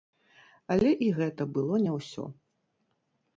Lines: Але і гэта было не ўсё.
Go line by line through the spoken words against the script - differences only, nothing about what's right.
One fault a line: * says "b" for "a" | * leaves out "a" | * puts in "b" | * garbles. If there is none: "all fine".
all fine